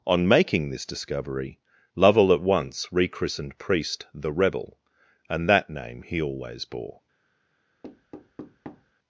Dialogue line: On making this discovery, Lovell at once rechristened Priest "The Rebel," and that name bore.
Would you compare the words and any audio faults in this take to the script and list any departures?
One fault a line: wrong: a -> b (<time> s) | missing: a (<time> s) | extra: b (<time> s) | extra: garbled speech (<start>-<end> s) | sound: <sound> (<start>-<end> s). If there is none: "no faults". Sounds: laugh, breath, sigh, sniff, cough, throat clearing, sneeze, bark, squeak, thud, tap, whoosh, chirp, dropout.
extra: he always (6.0 s)
sound: thud (7.8-8.9 s)